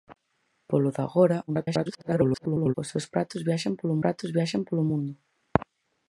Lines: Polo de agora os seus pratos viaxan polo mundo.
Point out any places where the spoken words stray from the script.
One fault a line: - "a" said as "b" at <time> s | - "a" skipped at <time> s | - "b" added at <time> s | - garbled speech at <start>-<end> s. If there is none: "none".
- garbled speech at 1.5-2.7 s
- "pratos viaxan polo" added at 4.0 s